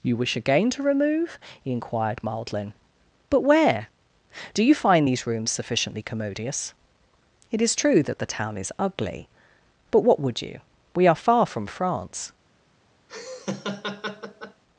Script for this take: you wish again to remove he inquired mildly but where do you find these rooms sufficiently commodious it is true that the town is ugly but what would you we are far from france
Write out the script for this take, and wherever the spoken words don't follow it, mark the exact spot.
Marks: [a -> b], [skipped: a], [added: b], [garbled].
you wish again to remove he inquired mildly but where do you find these rooms sufficiently commodious it is true that the town is ugly but what would you we are far from france